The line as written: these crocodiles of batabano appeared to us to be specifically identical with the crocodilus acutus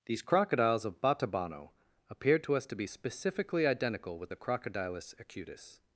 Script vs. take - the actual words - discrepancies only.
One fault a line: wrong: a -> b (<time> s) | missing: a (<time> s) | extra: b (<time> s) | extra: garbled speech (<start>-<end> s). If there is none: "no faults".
no faults